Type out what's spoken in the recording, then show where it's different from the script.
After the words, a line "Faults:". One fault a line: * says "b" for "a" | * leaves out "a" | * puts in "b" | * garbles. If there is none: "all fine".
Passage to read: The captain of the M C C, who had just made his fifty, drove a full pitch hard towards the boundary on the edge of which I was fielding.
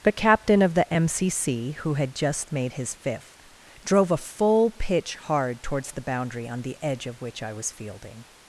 The captain of the M C C, who had just made his fifth, drove a full pitch hard towards the boundary on the edge of which I was fielding.
Faults:
* says "fifth" for "fifty"